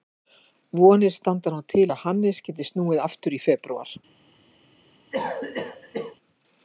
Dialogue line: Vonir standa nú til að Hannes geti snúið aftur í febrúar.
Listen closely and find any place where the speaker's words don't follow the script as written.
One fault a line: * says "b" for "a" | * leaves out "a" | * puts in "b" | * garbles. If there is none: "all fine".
all fine